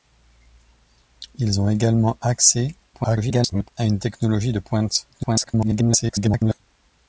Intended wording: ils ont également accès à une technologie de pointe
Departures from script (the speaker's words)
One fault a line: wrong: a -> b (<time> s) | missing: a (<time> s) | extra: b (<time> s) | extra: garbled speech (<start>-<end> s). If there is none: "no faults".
extra: garbled speech (2.9-3.7 s)
extra: garbled speech (5.1-6.6 s)